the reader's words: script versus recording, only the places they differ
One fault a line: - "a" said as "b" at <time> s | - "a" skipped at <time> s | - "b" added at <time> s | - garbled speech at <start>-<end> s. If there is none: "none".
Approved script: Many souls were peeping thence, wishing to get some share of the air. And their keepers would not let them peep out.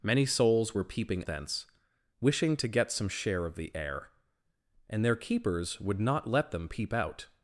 none